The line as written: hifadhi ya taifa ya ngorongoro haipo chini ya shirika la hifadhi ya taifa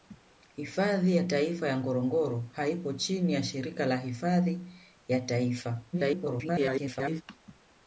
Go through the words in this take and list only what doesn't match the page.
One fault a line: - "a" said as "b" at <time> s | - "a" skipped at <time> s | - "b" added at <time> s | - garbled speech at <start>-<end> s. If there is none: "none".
- garbled speech at 5.9-7.2 s